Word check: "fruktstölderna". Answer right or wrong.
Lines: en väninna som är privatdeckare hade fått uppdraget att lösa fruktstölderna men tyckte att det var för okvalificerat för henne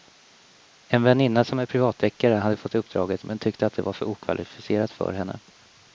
wrong